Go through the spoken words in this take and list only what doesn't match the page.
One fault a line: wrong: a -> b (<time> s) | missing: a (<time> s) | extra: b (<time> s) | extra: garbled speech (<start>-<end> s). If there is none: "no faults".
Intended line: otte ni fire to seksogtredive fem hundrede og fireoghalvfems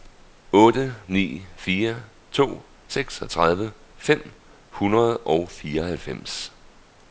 no faults